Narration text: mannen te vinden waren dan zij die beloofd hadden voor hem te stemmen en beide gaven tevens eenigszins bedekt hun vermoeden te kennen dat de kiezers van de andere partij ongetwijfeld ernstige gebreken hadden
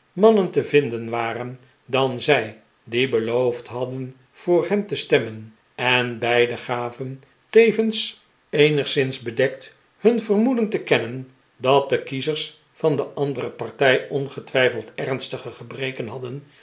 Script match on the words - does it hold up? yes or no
yes